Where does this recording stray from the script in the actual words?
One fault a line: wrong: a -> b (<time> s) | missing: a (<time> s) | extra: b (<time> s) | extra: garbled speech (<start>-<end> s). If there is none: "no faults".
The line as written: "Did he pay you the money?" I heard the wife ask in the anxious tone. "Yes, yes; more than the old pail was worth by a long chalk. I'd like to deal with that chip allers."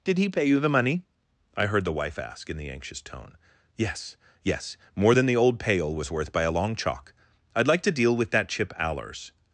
no faults